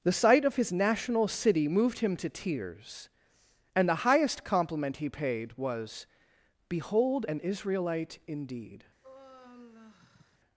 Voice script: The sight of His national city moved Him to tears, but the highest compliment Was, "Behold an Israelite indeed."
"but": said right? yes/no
no